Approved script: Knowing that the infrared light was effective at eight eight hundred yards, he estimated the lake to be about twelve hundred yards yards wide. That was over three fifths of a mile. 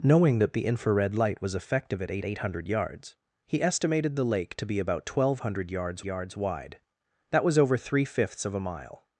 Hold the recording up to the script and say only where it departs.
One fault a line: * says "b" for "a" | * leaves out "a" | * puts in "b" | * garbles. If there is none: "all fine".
all fine